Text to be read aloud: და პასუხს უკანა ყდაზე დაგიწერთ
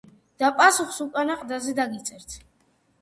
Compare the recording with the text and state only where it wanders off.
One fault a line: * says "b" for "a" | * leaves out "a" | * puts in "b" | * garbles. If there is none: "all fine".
all fine